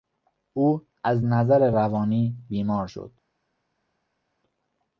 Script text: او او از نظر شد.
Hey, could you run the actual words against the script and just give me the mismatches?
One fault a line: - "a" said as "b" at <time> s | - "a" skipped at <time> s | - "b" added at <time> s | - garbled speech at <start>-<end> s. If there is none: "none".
- "او" skipped at 0.9 s
- "روانی بیمار" added at 1.7 s